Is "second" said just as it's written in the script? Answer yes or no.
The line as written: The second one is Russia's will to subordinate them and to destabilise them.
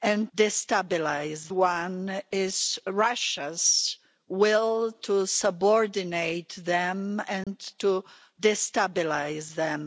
no